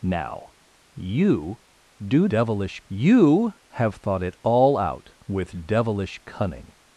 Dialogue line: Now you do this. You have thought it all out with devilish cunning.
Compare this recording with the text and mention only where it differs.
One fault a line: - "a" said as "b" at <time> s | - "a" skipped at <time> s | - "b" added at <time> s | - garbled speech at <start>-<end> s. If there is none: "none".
- "this" said as "devilish" at 2.3 s